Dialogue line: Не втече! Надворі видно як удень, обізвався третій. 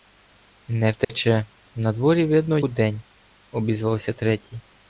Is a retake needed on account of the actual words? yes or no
yes